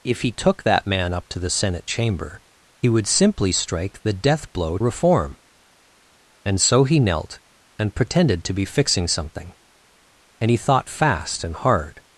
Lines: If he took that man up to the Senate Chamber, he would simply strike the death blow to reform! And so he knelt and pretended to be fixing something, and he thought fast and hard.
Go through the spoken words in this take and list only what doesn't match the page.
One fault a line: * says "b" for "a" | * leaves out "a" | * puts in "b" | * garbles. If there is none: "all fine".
* leaves out "to"